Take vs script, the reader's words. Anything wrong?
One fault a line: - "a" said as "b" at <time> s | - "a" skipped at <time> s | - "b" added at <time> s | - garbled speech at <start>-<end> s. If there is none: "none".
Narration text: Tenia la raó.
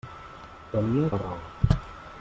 none